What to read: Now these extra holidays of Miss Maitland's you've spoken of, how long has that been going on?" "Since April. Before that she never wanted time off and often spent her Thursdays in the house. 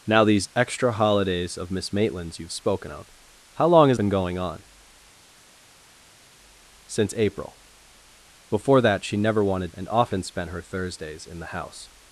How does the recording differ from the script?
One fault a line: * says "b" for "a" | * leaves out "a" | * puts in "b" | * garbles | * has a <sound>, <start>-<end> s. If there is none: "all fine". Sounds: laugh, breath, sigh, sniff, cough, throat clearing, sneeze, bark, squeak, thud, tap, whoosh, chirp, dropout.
* leaves out "that"
* leaves out "time off"